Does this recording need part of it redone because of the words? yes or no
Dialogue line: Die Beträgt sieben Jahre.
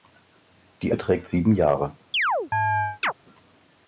no